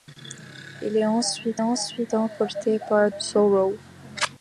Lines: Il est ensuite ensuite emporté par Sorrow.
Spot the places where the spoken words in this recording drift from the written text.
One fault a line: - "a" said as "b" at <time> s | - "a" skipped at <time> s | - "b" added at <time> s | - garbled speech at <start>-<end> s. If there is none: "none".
none